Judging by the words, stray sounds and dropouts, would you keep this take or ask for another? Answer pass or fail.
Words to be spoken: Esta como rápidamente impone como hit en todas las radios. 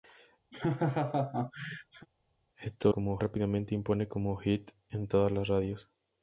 fail